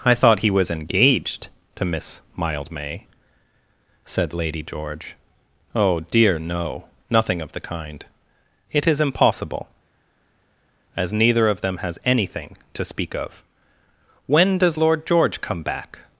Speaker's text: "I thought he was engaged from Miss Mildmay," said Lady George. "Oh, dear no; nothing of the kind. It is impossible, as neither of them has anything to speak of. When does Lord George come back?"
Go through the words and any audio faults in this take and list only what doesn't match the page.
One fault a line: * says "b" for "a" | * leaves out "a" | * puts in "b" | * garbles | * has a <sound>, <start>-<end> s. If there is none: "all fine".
* says "to" for "from"